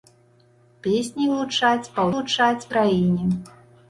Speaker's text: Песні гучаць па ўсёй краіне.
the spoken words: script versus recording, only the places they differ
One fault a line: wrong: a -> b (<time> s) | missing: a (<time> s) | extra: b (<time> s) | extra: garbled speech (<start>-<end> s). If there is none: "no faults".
wrong: ўсёй -> гучаць (2.1 s)